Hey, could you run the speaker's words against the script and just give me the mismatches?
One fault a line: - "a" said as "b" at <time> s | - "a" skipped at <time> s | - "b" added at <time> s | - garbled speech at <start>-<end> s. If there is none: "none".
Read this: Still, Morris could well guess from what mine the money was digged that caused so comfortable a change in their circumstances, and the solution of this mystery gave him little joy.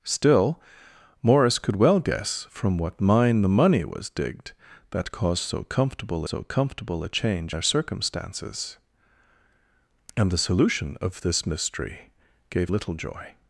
- "so comfortable" added at 6.2 s
- "in" skipped at 7.5 s
- "him" skipped at 12.7 s